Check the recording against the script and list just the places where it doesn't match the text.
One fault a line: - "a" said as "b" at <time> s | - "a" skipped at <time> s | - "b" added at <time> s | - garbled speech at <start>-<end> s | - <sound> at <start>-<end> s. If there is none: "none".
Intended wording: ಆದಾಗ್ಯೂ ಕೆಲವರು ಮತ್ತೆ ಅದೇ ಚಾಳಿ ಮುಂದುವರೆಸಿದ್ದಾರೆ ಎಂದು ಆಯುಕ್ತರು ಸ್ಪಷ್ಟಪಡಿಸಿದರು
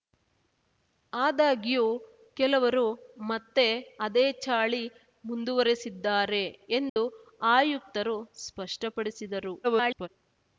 - dropout at 6.9-7.0 s
- garbled speech at 9.6-10.1 s